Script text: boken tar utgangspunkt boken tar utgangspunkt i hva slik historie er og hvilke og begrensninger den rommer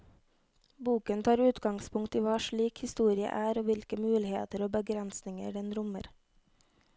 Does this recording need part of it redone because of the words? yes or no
yes